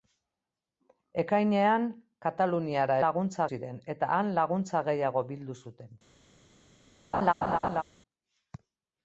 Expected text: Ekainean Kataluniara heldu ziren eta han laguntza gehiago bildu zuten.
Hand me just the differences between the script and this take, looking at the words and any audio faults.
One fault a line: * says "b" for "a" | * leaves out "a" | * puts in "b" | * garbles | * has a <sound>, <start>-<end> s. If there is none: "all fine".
* says "laguntza" for "heldu"
* has a laugh, 7.1-7.8 s